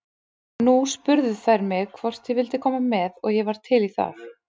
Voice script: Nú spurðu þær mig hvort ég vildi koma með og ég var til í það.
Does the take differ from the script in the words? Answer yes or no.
no